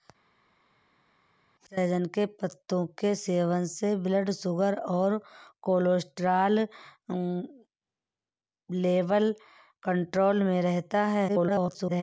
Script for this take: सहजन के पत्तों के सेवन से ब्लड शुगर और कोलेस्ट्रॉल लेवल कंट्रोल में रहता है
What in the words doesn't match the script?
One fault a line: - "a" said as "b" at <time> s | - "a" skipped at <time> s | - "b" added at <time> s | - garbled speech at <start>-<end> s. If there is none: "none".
- garbled speech at 11.3-12.0 s